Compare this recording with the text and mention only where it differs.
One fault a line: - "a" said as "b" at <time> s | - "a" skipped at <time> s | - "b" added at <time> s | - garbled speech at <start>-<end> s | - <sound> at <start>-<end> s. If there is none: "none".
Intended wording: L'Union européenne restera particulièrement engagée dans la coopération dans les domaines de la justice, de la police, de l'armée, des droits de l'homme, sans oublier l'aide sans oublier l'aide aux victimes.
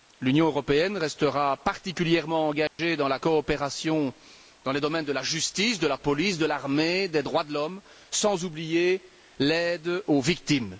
- dropout at 2.7-2.8 s
- "sans oublier l'aide" skipped at 10.0 s